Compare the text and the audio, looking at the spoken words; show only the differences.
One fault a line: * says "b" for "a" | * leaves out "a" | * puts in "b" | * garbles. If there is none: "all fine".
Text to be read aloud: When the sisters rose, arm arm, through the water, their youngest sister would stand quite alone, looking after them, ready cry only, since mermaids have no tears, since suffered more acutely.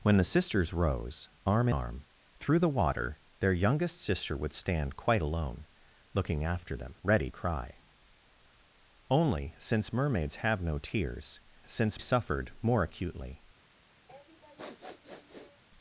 all fine